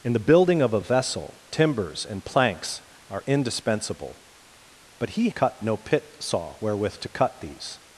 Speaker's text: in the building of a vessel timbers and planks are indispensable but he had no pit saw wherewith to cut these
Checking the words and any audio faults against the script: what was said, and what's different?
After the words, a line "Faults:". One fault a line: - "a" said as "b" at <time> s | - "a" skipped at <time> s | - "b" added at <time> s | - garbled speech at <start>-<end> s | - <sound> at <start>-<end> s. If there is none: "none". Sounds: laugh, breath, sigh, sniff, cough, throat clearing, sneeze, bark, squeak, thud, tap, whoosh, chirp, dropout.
in the building of a vessel timbers and planks are indispensable but he cut no pit saw wherewith to cut these
Faults:
- "had" said as "cut" at 5.3 s